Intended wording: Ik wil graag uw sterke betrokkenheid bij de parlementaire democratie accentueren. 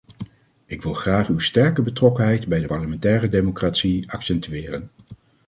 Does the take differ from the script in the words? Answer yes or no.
no